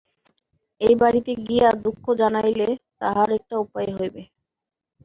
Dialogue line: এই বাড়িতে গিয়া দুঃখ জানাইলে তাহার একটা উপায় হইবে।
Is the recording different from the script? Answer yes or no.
no